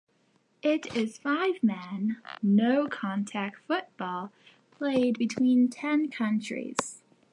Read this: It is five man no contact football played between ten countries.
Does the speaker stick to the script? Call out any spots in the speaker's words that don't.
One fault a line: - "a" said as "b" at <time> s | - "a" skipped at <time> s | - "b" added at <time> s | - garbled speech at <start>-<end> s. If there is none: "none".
none